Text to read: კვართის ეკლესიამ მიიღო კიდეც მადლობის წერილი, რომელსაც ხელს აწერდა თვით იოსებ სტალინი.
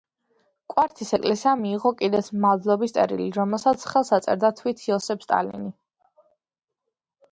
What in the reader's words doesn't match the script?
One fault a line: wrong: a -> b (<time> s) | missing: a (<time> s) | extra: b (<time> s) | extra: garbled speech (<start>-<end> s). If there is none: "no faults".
no faults